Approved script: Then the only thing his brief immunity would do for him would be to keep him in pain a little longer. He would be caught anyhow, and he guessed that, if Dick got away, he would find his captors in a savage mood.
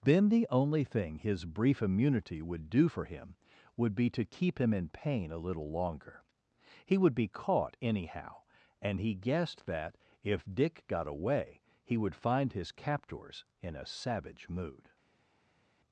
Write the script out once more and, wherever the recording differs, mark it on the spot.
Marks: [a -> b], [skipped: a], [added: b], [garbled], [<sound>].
Then the only thing his brief immunity would do for him would be to keep him in pain a little longer. He would be caught anyhow, and he guessed that, if Dick got away, he would find his captors in a savage mood.